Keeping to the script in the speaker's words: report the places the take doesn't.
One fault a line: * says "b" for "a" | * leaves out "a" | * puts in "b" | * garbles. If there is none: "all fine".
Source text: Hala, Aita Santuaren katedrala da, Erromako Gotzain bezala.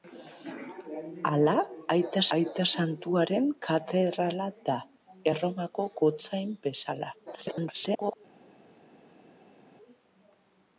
* puts in "Aita"
* garbles